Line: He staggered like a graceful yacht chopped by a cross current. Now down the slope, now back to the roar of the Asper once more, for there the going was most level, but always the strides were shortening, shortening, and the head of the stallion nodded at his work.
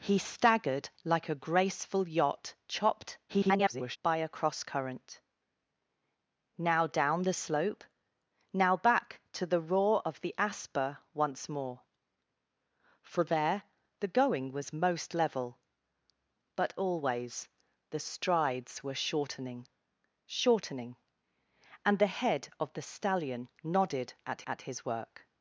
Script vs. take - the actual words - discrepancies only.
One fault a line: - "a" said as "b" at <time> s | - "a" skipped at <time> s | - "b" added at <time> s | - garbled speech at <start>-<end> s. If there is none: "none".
- garbled speech at 3.3-4.0 s
- "at" added at 24.5 s